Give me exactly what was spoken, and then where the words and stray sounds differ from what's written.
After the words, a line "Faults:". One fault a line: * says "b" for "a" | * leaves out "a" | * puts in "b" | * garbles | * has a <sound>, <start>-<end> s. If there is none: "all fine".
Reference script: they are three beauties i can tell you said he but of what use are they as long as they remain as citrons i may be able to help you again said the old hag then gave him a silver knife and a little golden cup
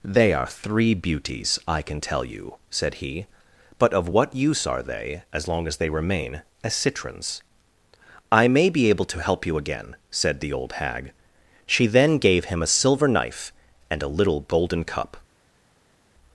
they are three beauties i can tell you said he but of what use are they as long as they remain as citrons i may be able to help you again said the old hag she then gave him a silver knife and a little golden cup
Faults:
* puts in "she"